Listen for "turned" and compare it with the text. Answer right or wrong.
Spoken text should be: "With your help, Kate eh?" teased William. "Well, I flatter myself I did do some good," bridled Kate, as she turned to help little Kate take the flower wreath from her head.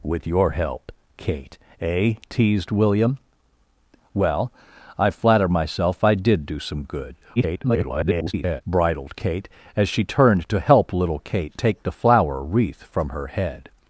right